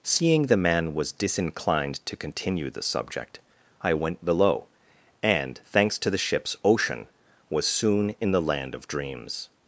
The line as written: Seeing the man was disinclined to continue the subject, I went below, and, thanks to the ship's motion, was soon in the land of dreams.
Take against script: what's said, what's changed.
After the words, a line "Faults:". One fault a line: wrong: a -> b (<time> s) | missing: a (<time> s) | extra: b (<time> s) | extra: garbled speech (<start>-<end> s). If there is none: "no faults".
Seeing the man was disinclined to continue the subject, I went below, and, thanks to the ship's ocean, was soon in the land of dreams.
Faults:
wrong: motion -> ocean (6.6 s)